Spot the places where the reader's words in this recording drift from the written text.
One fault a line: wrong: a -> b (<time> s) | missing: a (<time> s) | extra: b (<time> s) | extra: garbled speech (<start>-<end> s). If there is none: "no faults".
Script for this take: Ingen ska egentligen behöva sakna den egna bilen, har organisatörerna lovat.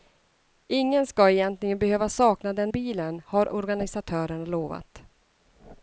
missing: egna (2.7 s)